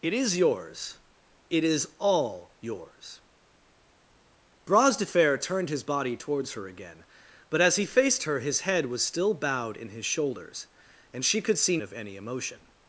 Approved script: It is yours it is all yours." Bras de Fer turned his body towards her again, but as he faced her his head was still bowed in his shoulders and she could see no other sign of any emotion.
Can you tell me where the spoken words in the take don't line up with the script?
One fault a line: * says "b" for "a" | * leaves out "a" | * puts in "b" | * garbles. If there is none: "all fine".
* leaves out "no other sign"